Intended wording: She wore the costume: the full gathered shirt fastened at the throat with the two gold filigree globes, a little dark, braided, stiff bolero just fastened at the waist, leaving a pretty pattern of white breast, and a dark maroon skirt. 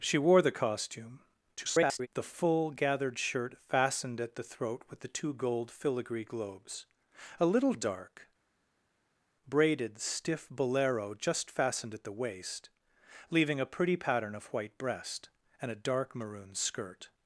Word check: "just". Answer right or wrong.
right